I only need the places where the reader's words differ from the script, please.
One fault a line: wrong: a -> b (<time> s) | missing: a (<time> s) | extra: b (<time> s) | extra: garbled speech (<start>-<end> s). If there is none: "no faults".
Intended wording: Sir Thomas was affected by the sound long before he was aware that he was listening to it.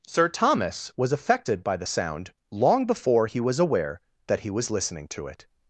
no faults